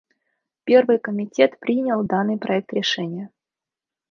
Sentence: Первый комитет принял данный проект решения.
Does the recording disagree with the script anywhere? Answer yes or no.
no